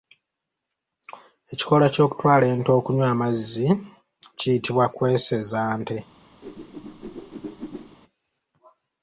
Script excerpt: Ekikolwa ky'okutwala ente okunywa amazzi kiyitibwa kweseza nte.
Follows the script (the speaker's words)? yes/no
yes